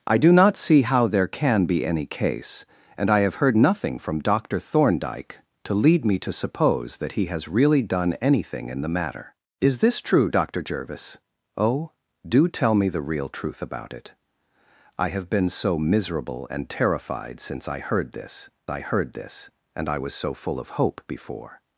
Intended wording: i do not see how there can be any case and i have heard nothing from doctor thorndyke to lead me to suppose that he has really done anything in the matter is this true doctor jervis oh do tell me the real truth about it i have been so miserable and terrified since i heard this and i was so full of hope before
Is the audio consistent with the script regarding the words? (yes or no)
no